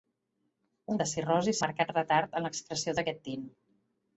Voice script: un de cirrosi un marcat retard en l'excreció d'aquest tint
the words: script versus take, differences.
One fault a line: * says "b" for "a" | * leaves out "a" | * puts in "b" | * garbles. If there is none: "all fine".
all fine